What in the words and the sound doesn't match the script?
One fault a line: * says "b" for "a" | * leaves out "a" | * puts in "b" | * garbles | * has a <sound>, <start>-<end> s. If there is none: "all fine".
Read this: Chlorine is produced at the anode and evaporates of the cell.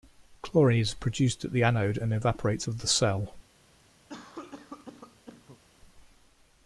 * has a cough, 4.1-5.6 s